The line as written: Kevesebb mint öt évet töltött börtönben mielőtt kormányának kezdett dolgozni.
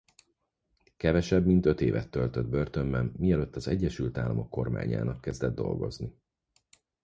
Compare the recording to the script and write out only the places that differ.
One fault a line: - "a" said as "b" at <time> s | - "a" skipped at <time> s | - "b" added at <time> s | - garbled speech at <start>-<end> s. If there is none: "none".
- "az Egyesült Államok" added at 3.5 s